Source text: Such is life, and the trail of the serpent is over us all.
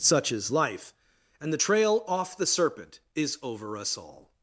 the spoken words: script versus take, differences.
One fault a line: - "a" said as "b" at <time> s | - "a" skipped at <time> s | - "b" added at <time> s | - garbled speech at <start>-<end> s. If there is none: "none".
- "of" said as "off" at 2.1 s